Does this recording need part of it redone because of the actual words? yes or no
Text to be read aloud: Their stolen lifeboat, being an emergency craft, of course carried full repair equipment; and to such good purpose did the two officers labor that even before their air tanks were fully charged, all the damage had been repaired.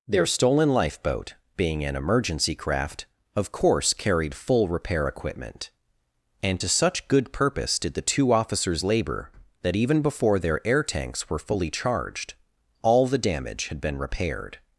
no